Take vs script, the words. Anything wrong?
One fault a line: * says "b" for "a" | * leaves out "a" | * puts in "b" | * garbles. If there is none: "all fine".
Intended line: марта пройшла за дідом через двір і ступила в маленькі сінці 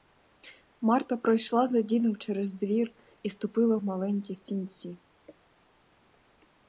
all fine